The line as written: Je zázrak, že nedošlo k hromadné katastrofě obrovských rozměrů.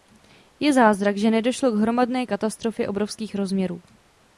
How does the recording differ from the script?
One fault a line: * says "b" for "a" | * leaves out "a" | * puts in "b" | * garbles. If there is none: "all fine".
all fine